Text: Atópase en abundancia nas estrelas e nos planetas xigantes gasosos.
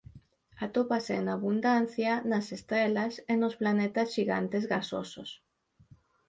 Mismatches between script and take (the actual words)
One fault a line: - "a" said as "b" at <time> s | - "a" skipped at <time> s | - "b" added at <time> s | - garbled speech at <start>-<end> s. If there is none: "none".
none